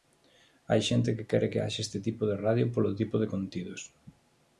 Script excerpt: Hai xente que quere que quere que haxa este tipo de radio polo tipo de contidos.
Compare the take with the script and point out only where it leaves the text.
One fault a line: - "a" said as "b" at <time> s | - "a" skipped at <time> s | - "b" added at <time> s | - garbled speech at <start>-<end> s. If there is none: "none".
- "quere que" skipped at 1.6 s